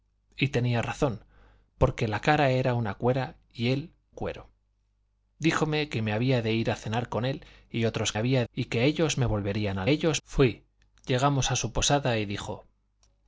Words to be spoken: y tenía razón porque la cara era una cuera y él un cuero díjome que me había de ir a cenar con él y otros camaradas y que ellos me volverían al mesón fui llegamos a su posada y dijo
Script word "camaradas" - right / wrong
wrong